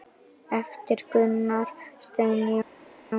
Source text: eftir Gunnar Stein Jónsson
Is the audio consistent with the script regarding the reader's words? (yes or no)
yes